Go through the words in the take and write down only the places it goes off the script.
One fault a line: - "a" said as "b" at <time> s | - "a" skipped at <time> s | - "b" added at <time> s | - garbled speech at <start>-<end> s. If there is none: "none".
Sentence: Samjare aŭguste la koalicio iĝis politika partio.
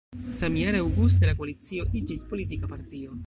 none